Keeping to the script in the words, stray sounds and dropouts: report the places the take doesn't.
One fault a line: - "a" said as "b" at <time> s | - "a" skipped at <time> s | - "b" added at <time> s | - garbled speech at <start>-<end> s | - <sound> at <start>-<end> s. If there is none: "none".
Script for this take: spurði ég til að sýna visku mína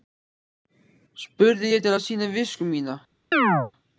- chirp at 3.3-3.7 s